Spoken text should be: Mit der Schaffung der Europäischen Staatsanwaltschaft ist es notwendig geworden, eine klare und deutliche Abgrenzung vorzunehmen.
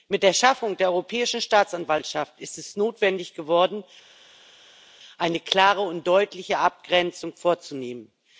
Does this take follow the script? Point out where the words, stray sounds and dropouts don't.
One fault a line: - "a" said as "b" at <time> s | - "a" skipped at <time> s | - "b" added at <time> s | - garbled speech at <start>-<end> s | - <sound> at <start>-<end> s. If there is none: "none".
none